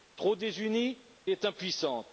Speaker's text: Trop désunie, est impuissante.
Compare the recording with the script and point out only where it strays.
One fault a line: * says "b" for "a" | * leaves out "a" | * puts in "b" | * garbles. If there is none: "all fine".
all fine